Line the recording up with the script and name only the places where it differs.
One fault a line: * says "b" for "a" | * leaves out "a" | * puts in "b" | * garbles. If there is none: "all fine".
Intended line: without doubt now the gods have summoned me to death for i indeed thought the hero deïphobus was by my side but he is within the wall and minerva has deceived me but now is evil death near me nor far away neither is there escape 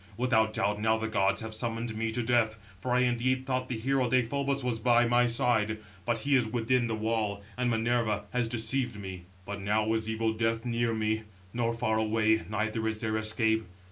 all fine